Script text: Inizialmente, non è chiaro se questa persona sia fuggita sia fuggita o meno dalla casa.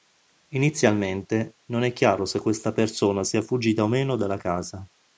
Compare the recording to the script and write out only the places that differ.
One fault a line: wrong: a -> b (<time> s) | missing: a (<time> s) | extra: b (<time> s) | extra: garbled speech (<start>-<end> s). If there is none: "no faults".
missing: sia fuggita (3.8 s)